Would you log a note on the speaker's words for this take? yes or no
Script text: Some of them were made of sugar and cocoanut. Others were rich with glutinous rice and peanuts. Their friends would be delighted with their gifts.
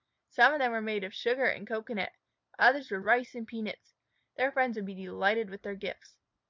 yes